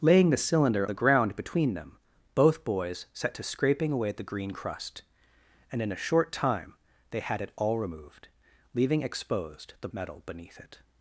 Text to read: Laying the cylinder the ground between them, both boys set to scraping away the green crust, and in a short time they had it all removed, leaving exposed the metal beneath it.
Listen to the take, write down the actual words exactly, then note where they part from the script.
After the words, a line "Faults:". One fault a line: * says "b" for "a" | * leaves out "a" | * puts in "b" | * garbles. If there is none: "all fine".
Laying the cylinder the ground between them, both boys set to scraping away the green crust, and in a short time they had it all removed, leaving exposed the metal beneath it.
Faults:
all fine